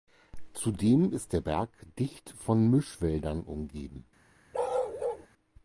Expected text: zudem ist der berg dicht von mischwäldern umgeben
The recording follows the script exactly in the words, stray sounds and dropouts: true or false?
false